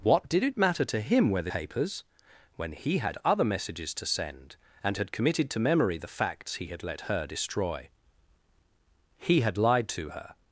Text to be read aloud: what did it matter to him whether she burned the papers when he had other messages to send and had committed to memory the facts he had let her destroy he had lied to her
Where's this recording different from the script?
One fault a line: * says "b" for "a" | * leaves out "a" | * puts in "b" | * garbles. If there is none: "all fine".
* leaves out "she burned the"